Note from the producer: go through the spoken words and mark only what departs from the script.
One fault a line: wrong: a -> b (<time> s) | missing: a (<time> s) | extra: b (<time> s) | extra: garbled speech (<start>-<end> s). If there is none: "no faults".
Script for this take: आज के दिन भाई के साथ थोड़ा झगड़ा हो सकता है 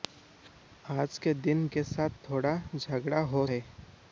missing: भाई (1.7 s)
missing: सकता (3.5 s)